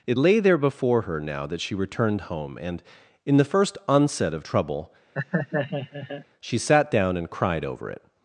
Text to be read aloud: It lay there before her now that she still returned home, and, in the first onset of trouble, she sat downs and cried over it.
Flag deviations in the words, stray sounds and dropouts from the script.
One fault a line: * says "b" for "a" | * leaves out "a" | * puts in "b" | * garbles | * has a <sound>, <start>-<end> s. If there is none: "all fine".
* leaves out "still"
* has a laugh, 5.1-6.2 s
* says "down" for "downs"